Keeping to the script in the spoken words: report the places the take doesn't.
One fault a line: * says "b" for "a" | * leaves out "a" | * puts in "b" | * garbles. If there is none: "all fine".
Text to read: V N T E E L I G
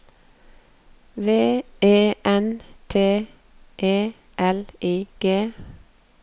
* puts in "E"
* leaves out "E"